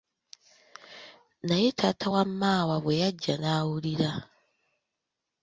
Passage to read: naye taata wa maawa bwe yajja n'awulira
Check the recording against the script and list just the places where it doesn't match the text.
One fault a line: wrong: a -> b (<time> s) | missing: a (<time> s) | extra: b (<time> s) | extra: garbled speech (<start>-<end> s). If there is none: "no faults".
no faults